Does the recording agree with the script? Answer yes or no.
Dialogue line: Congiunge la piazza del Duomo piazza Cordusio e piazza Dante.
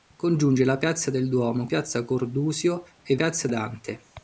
yes